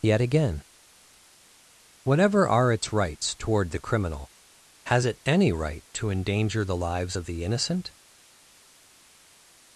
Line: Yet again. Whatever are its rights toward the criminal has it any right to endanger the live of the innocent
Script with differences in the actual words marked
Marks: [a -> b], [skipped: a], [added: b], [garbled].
Yet again. Whatever are its rights toward the criminal has it any right to endanger the [live -> lives] of the innocent